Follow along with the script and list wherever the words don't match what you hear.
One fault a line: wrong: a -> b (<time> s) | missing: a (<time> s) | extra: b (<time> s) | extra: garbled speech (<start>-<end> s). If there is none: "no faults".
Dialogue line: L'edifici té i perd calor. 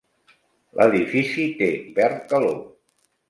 no faults